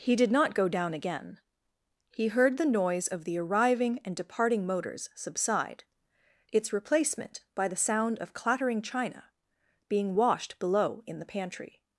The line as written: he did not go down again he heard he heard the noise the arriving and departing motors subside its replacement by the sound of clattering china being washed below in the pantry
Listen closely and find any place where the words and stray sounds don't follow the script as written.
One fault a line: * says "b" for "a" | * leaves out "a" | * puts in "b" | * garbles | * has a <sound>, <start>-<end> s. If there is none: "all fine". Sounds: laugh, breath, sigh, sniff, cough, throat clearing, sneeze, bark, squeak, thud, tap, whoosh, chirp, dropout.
* leaves out "he heard"
* puts in "of"